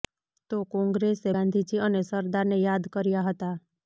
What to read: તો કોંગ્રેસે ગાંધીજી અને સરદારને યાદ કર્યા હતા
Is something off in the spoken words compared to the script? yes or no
no